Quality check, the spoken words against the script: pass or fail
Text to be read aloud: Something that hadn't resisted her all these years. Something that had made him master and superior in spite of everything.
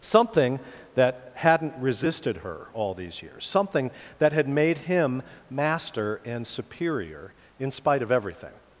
pass